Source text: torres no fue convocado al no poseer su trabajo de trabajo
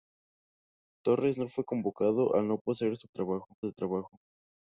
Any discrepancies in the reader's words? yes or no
no